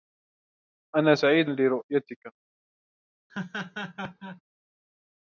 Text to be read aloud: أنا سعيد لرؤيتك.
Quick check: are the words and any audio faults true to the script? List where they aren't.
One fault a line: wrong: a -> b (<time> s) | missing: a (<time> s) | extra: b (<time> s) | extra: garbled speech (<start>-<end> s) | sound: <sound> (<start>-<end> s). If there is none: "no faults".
sound: laugh (3.3-4.4 s)